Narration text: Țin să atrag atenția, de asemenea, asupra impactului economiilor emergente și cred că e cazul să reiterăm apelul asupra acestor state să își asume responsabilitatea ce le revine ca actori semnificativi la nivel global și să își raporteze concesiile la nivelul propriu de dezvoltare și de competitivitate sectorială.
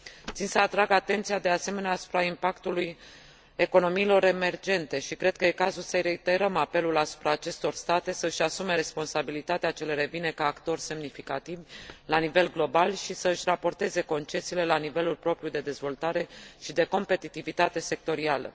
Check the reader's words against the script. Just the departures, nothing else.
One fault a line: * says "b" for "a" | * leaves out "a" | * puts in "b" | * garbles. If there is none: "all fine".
all fine